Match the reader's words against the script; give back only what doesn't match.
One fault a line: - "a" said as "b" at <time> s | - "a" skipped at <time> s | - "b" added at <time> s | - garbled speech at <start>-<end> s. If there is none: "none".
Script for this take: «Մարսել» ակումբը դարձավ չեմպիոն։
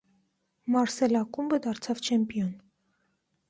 none